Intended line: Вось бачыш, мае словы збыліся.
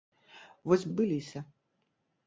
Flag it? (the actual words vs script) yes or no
yes